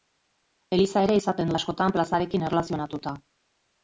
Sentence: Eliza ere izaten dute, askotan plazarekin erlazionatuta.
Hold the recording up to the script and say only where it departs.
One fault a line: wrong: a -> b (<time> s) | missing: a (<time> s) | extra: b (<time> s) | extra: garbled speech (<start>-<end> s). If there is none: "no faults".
missing: dute (1.5 s)